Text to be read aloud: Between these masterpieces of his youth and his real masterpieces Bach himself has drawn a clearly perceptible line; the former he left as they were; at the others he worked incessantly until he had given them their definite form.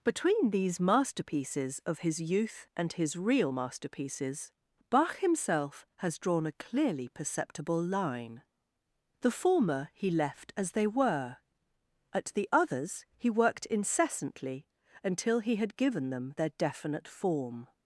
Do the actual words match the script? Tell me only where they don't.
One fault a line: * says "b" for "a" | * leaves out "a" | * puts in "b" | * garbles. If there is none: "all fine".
all fine